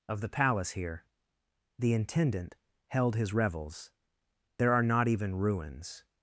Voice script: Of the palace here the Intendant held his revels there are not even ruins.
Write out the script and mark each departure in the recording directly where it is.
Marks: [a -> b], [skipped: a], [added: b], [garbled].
Of the palace here the Intendant held his revels there are not even ruins.